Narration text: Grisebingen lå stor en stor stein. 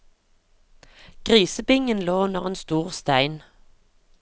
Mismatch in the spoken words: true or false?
true